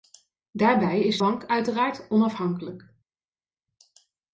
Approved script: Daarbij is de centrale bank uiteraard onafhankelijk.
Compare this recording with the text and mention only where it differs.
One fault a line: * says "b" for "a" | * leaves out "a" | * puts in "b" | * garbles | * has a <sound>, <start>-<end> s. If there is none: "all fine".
* leaves out "de centrale"